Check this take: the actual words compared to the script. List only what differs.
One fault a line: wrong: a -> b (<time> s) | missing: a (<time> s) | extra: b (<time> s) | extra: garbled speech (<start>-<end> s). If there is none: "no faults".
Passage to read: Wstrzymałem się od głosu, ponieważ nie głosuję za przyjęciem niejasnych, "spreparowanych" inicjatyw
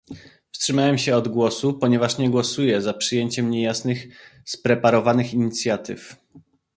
no faults